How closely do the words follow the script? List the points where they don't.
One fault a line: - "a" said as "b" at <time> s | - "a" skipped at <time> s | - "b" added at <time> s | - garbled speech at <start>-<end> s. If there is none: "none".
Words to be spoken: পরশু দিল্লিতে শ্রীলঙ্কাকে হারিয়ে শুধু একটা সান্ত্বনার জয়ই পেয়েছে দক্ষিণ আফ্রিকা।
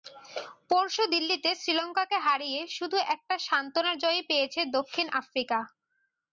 none